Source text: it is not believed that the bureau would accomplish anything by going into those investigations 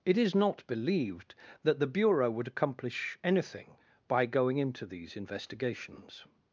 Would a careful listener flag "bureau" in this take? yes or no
no